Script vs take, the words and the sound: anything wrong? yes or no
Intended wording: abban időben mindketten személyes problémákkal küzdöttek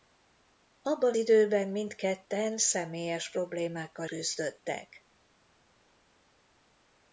no